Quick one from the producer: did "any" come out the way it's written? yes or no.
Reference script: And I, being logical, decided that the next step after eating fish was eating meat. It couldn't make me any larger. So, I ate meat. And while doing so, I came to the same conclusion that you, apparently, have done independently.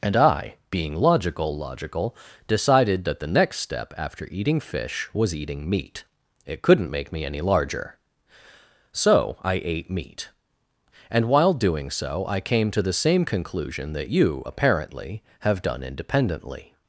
yes